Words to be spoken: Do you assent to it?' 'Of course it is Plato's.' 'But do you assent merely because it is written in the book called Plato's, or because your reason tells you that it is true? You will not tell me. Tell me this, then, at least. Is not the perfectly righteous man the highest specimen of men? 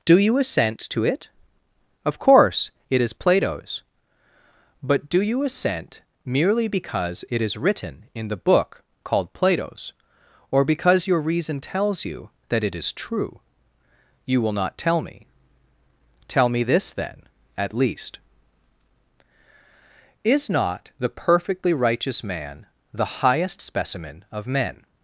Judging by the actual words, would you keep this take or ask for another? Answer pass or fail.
pass